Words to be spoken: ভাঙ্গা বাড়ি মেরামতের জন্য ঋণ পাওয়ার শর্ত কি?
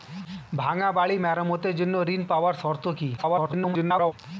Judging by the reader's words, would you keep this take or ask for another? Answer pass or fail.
fail